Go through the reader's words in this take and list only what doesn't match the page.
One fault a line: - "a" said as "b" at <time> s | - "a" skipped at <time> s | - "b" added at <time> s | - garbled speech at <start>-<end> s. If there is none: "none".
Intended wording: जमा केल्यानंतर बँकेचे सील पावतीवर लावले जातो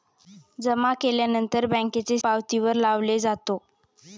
- "सील" skipped at 2.2 s